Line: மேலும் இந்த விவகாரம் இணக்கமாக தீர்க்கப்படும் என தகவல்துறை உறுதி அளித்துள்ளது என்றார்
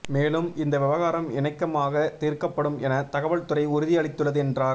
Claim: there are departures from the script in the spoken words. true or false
false